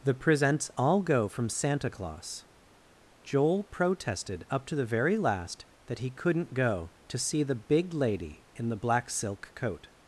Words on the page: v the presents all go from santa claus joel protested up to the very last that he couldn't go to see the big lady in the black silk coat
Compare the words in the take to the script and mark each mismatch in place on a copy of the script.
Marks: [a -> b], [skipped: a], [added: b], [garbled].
[skipped: v] the presents all go from santa claus joel protested up to the very last that he couldn't go to see the big lady in the black silk coat